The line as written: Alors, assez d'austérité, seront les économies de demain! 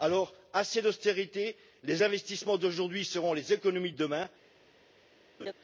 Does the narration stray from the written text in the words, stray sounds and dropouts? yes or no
yes